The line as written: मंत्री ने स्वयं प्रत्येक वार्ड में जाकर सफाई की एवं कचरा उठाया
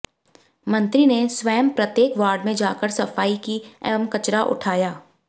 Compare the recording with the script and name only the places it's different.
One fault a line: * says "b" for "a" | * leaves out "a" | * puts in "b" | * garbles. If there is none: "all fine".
all fine